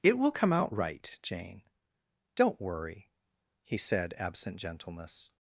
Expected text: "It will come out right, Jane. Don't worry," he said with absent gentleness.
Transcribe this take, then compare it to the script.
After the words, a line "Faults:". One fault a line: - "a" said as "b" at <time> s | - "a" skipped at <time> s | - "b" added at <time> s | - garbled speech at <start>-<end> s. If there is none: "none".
"It will come out right, Jane. Don't worry," he said absent gentleness.
Faults:
- "with" skipped at 4.1 s